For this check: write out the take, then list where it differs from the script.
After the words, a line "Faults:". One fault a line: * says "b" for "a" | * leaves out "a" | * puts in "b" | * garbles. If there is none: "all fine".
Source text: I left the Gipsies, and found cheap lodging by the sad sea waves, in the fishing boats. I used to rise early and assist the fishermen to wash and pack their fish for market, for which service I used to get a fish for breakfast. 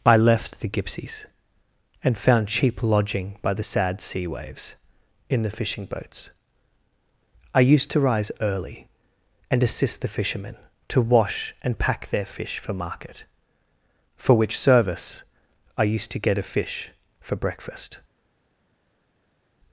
I left the Gipsies, and found cheap lodging by the sad sea waves, in the fishing boats. I used to rise early and assist the fishermen to wash and pack their fish for market, for which service I used to get a fish for breakfast.
Faults:
all fine